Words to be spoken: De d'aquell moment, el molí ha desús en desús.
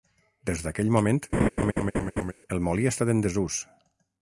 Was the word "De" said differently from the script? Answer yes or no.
yes